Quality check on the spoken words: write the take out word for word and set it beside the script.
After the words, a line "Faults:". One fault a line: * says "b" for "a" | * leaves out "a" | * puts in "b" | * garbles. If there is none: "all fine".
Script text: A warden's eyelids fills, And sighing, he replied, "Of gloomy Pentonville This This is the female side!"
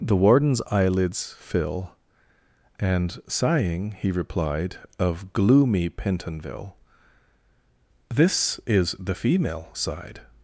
The warden's eyelids fill, And sighing, he replied, "Of gloomy Pentonville This is the female side!"
Faults:
* says "The" for "A"
* says "fill" for "fills"
* leaves out "This"